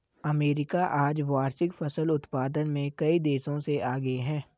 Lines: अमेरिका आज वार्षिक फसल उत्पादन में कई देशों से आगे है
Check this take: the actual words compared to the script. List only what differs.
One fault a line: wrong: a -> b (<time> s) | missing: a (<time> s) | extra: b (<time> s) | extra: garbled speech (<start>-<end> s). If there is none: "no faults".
no faults